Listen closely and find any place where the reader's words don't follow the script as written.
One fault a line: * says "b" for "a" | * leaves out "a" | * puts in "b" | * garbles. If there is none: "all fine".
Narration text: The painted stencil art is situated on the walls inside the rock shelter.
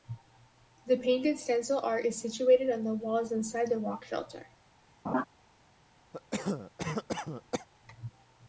all fine